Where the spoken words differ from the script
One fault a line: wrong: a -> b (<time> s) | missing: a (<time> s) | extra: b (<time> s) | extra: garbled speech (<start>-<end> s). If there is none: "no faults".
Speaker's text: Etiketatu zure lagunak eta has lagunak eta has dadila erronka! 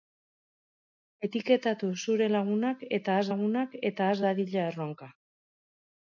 no faults